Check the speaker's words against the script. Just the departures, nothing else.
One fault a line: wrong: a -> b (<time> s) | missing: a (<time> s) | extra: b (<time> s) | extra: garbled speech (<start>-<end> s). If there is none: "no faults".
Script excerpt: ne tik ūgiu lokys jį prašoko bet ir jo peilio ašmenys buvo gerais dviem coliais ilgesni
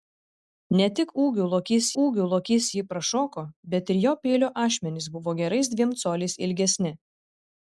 extra: ūgiu lokys (2.0 s)